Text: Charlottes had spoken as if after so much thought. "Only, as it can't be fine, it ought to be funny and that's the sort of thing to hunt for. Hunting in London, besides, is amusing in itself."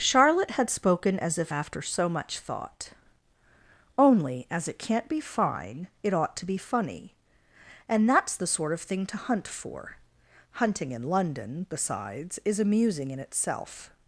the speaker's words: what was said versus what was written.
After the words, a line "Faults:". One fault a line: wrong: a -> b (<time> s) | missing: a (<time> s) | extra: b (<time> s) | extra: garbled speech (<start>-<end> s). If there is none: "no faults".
Charlotte had spoken as if after so much thought. "Only, as it can't be fine, it ought to be funny and that's the sort of thing to hunt for. Hunting in London, besides, is amusing in itself."
Faults:
wrong: Charlottes -> Charlotte (0.0 s)